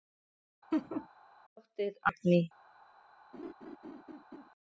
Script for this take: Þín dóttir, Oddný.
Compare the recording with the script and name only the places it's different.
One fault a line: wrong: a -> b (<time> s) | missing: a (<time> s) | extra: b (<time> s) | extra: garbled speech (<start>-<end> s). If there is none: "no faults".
no faults